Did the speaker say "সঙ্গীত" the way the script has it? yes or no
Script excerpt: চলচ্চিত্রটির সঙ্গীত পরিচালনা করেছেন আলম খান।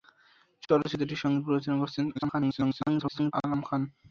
yes